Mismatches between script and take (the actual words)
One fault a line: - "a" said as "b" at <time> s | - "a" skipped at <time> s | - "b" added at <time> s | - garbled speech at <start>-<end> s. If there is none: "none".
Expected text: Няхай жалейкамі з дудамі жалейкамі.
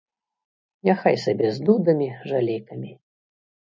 - "жалейкамі" said as "сабе" at 1.2 s